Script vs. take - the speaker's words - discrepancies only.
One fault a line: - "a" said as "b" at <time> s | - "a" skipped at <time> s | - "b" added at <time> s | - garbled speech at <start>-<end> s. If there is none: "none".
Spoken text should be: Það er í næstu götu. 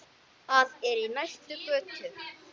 none